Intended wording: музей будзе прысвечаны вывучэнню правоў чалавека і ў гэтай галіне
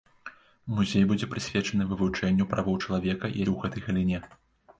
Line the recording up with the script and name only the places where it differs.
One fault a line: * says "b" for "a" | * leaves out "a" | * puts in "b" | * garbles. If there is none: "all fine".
all fine